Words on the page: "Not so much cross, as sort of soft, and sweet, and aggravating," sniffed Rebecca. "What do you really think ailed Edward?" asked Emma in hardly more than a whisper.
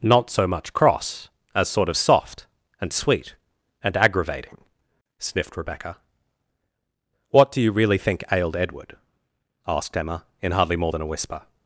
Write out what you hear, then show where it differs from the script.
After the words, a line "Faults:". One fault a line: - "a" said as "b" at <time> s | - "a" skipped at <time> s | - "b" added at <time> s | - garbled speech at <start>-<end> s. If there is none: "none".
"Not so much cross, as sort of soft, and sweet, and aggravating," sniffed Rebecca. "What do you really think ailed Edward?" asked Emma in hardly more than a whisper.
Faults:
none